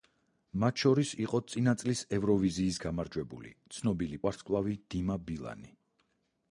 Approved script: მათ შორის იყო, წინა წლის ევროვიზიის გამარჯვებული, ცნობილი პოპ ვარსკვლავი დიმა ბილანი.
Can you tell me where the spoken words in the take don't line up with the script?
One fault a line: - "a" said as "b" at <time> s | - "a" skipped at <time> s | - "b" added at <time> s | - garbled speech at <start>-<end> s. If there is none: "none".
- "პოპ" skipped at 4.2 s